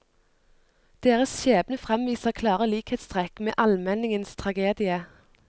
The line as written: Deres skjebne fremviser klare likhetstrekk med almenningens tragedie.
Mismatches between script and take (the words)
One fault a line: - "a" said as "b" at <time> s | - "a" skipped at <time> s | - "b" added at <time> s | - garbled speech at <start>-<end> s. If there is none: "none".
none